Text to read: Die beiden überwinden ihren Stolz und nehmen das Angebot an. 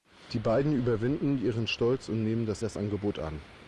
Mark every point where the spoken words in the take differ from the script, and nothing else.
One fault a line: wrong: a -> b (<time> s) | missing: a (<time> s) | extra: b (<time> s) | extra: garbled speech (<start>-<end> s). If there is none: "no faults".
extra: das (2.6 s)